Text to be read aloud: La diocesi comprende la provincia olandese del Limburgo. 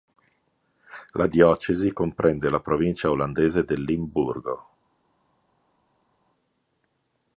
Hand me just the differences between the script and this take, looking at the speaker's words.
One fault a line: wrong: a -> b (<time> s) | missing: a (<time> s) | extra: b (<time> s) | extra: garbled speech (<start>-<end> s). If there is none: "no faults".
no faults